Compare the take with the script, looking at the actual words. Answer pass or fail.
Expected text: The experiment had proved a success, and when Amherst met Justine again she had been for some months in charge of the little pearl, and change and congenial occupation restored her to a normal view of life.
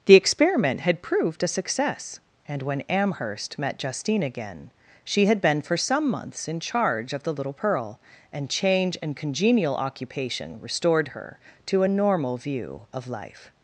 pass